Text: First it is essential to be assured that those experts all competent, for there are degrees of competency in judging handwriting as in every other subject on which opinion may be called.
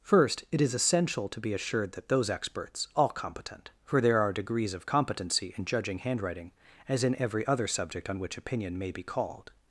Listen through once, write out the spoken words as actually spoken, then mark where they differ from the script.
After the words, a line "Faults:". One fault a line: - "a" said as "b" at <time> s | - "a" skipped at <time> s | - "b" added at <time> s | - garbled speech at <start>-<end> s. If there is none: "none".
First it is essential to be assured that those experts all competent, for there are degrees of competency in judging handwriting as in every other subject on which opinion may be called.
Faults:
none